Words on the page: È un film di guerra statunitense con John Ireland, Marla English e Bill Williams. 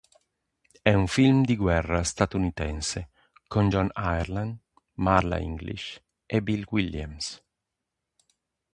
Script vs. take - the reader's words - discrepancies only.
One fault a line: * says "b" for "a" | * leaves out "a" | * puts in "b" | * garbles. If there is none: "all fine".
all fine